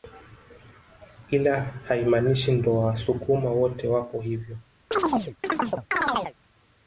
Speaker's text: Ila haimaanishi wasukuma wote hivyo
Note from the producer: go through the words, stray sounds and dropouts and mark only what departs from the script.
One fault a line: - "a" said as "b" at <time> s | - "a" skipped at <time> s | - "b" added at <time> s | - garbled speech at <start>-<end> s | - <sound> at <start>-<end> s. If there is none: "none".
- "ndo" added at 2.5 s
- "wapo" added at 3.9 s
- chirp at 4.9-6.3 s